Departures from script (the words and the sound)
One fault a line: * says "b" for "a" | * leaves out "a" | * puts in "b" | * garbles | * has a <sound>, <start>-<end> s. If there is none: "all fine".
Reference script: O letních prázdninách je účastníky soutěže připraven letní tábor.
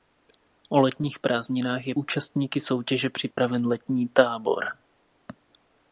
* has a dropout, 3.3-3.4 s